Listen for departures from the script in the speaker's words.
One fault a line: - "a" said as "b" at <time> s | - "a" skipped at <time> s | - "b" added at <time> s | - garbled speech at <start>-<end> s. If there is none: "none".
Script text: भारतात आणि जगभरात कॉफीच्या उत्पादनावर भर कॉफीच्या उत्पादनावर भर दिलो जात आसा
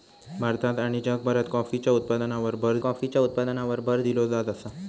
none